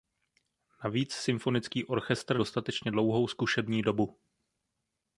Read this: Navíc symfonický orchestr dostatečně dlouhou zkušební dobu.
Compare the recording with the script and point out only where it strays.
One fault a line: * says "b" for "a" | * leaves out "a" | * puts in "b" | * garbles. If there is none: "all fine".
all fine